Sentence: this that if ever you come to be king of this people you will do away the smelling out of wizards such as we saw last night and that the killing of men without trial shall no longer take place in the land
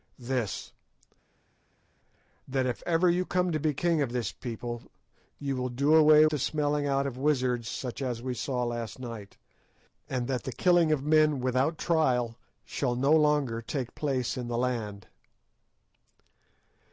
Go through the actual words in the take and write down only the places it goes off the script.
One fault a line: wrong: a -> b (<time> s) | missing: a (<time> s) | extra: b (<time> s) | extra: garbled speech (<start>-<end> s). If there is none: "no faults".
no faults